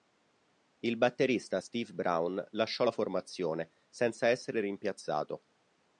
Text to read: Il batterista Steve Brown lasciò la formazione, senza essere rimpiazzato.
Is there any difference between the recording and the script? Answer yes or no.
no